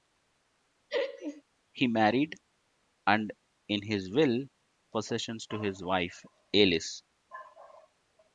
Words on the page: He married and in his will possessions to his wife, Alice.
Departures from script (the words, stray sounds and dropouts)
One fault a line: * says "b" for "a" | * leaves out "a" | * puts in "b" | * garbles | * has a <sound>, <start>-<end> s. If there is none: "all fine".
* has a laugh, 0.9-1.4 s